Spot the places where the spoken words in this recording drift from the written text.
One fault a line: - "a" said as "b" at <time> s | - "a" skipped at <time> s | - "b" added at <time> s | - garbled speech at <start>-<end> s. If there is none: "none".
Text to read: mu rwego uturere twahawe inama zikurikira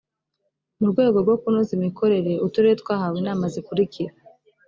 - "rwo kunoza imikorere" added at 1.2 s